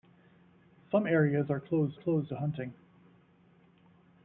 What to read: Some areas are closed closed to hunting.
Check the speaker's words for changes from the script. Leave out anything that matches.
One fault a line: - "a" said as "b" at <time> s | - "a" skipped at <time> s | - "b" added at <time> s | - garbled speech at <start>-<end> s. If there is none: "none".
none